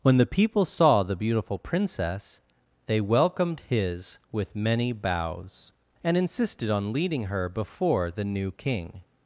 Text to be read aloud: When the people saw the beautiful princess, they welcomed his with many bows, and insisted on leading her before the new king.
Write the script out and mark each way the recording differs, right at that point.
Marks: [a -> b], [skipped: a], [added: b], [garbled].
When the people saw the beautiful princess, they welcomed his with many bows, and insisted on leading her before the new king.